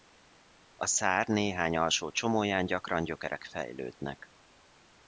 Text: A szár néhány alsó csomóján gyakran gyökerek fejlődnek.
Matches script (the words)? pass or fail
pass